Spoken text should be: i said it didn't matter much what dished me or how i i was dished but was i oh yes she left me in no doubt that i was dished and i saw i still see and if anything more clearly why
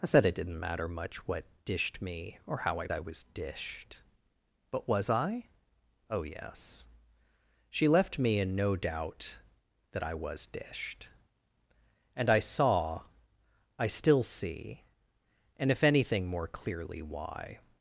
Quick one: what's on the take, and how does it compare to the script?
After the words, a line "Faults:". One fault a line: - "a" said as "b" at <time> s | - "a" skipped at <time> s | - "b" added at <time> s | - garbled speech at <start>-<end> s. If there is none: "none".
i said it didn't matter much what dished me or how i i was dished but was i oh yes she left me in no doubt that i was dished and i saw i still see and if anything more clearly why
Faults:
none